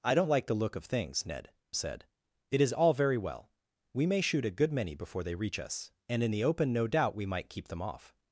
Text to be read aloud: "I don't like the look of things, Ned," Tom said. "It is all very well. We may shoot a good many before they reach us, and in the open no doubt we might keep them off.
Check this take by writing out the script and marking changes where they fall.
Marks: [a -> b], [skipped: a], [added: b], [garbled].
"I don't like the look of things, Ned," [skipped: Tom] said. "It is all very well. We may shoot a good many before they reach us, and in the open no doubt we might keep them off.